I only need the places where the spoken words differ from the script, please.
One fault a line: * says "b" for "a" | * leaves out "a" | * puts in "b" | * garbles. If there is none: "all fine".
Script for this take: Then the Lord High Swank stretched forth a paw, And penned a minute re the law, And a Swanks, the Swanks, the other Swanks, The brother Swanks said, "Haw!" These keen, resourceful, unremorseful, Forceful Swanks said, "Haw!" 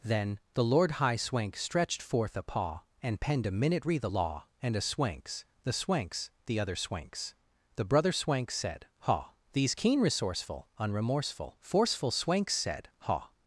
all fine